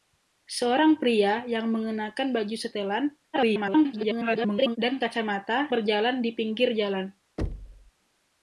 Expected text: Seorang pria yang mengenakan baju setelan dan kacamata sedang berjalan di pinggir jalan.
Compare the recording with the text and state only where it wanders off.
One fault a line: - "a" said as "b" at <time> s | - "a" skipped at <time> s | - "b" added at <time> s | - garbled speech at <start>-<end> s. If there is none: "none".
- garbled speech at 3.3-4.8 s
- "sedang" skipped at 5.7 s